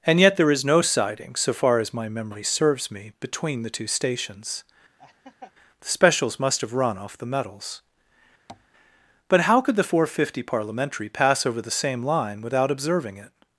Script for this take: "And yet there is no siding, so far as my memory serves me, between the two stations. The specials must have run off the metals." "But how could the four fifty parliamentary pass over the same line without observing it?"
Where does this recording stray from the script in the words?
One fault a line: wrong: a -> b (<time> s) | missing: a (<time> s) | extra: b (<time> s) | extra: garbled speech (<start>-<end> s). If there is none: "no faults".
no faults